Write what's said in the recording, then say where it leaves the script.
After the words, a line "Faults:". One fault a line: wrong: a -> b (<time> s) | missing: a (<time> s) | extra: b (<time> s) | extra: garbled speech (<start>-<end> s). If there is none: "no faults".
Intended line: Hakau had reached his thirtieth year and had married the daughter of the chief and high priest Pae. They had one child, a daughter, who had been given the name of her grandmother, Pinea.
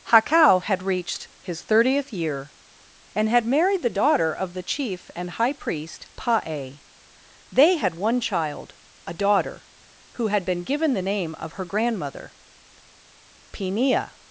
Hakau had reached his thirtieth year and had married the daughter of the chief and high priest Pae. They had one child, a daughter, who had been given the name of her grandmother, Pinea.
Faults:
no faults